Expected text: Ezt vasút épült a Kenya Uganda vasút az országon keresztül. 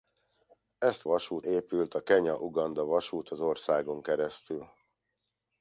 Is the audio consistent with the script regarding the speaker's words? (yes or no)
yes